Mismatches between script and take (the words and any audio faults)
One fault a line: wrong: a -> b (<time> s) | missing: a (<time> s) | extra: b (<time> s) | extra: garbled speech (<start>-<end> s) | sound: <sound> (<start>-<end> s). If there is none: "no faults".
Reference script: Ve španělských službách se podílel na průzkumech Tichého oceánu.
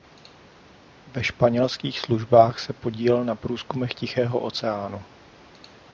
no faults